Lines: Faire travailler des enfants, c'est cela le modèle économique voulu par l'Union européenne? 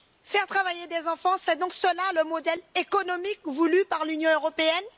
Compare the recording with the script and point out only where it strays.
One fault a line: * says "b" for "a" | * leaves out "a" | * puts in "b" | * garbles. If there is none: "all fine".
* puts in "donc"